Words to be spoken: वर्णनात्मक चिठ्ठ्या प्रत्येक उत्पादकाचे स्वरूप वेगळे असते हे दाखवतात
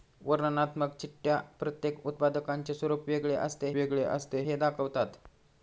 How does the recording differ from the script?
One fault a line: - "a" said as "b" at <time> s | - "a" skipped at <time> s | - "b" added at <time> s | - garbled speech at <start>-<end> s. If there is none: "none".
- "वेगळे असते" added at 3.7 s